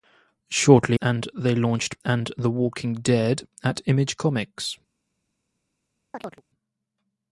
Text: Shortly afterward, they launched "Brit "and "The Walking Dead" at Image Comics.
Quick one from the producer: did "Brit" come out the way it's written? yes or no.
no